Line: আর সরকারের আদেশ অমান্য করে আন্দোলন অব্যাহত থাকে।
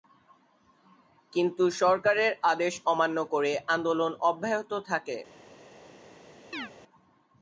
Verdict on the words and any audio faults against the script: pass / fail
fail